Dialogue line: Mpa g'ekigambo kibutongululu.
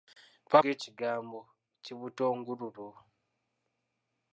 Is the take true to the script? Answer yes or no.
yes